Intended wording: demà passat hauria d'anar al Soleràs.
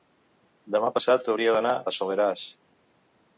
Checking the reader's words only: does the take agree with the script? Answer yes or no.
yes